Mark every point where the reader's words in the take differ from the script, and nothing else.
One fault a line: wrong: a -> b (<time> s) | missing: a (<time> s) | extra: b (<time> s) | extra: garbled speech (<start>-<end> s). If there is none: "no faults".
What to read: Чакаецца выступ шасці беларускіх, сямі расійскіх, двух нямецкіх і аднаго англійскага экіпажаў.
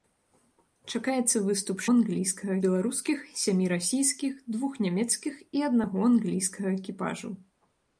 wrong: шасці -> англійскага (1.9 s)